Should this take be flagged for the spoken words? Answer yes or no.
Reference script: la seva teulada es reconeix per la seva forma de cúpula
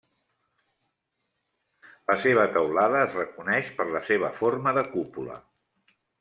no